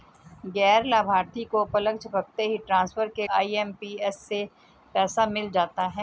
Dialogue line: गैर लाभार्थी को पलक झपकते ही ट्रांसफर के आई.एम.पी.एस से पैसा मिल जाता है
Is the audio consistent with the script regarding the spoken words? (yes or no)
yes